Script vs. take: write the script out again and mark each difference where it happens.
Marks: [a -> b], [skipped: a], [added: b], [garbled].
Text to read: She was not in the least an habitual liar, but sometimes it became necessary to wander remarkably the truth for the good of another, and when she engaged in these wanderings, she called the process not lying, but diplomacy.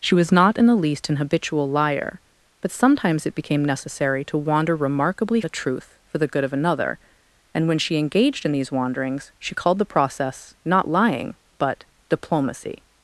She was not in the least an habitual liar, but sometimes it became necessary to wander remarkably the truth for the good of another, and when she engaged in these wanderings, she called the process not lying, but diplomacy.